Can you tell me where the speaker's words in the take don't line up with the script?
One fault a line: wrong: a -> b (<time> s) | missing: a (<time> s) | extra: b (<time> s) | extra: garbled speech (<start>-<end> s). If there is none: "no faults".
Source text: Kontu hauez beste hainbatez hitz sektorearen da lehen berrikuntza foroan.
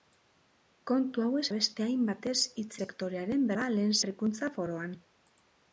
no faults